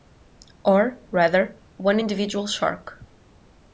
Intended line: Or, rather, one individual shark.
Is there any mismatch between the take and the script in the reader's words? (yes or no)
no